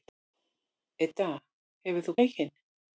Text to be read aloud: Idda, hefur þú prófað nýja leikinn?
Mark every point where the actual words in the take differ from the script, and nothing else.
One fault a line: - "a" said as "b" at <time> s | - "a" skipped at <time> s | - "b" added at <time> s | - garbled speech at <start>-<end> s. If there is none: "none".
- "prófað nýja" skipped at 2.2 s